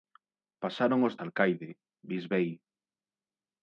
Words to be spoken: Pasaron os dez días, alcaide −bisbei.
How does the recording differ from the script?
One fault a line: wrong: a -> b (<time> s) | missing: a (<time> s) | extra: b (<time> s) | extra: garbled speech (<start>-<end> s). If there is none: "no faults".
missing: dez días (1.1 s)